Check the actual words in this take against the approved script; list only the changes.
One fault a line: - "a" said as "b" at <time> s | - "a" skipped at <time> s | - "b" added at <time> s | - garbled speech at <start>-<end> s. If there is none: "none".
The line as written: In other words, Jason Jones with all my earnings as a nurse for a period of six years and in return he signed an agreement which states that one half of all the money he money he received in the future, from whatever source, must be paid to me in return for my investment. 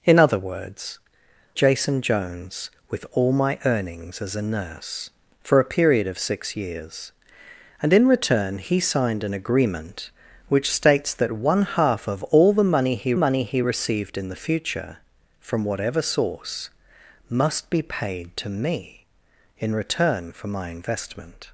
none